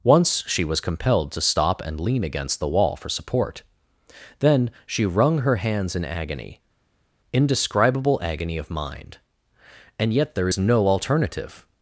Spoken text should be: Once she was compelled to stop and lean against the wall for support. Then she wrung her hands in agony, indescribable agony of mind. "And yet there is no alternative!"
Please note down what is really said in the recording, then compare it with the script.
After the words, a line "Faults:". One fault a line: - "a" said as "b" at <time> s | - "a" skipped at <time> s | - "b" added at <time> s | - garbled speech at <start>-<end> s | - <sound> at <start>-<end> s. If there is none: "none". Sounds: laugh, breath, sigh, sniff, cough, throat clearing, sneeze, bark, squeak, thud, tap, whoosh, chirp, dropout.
Once she was compelled to stop and lean against the wall for support. Then she wrung her hands in agony, indescribable agony of mind. "And yet there is no alternative!"
Faults:
none